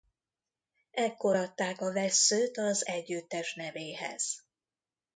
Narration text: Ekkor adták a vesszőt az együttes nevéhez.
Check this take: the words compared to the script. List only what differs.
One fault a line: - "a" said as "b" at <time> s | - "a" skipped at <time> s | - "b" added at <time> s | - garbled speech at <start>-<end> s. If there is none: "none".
none